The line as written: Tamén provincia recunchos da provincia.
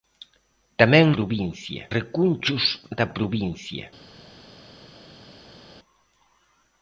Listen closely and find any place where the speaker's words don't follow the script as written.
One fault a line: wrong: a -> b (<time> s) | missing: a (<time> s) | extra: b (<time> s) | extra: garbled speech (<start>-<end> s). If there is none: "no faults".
no faults